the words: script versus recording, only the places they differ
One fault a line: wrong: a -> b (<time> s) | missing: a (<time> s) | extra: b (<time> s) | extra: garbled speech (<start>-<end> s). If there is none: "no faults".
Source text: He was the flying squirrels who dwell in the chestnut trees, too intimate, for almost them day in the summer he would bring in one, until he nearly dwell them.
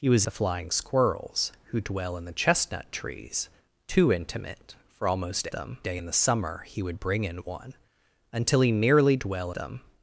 no faults